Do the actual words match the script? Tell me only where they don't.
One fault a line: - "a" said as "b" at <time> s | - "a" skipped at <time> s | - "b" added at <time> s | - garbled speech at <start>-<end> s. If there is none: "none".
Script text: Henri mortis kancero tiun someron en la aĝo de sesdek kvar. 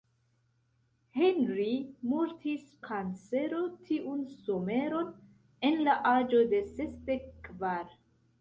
none